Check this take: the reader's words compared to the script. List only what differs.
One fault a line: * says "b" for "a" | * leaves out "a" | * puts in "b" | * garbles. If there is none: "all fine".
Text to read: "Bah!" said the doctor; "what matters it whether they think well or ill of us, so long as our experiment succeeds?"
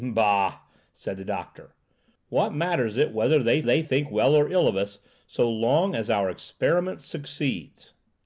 * puts in "they"